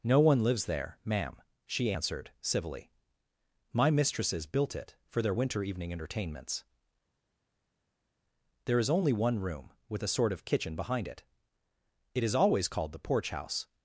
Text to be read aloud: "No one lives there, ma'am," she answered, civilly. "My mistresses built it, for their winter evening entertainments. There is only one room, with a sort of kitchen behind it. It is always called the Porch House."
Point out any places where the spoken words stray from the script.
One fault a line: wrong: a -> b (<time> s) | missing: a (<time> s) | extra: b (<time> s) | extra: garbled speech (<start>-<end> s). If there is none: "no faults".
no faults